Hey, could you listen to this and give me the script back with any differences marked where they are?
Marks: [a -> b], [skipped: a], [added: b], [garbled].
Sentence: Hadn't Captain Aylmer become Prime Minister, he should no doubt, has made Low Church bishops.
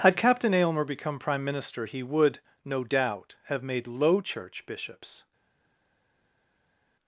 [Hadn't -> Had] Captain Aylmer become Prime Minister, he [should -> would] no doubt, [has -> have] made Low Church bishops.